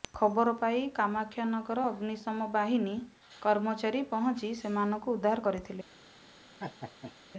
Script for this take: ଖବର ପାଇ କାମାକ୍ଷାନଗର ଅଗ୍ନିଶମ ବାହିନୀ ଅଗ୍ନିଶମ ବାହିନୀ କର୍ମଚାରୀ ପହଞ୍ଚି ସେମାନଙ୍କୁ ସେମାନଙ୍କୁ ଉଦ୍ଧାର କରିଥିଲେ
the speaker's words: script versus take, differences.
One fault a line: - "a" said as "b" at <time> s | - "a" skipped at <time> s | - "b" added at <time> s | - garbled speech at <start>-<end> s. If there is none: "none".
- "ଅଗ୍ନିଶମ ବାହିନୀ" skipped at 3.0 s
- "ସେମାନଙ୍କୁ" skipped at 5.2 s